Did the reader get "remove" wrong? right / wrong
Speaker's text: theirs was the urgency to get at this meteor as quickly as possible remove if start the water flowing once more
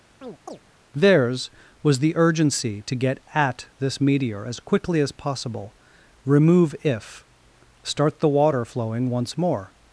right